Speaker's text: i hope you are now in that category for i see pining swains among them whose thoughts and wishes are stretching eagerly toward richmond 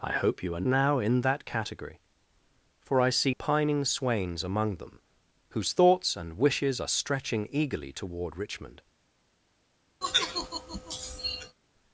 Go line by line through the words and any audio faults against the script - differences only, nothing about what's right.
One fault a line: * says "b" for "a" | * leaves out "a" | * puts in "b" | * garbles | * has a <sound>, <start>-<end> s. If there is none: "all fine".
* has a sigh, 10.0-11.6 s